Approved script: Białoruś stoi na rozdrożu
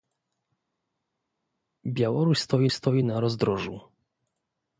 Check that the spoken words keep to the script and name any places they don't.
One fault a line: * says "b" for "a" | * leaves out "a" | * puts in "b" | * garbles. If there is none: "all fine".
* puts in "stoi"